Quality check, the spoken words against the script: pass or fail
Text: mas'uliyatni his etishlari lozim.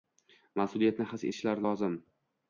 pass